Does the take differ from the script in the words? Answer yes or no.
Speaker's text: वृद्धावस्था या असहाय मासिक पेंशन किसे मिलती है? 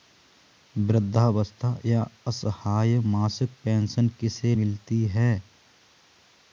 no